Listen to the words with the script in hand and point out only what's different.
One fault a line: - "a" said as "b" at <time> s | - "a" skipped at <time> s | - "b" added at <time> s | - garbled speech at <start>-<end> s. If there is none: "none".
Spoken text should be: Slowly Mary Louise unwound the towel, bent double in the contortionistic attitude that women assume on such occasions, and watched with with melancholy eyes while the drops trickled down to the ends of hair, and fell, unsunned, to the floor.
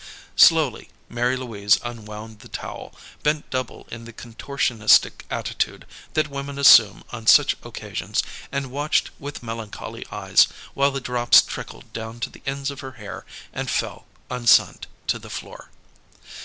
- "with" skipped at 9.4 s
- "her" added at 12.8 s